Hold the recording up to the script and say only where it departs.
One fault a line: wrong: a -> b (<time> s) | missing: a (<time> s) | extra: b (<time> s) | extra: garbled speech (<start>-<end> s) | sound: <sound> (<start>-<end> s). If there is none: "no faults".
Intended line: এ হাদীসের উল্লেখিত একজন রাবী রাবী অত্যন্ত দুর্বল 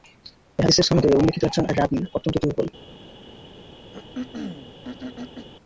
extra: সনদে (0.9 s)
missing: রাবী (2.0 s)
sound: throat clearing (3.9-5.5 s)